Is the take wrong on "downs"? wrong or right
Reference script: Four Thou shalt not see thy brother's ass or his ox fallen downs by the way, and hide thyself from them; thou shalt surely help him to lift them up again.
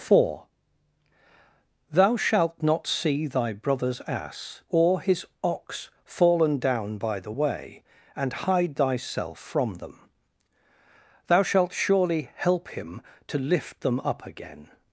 wrong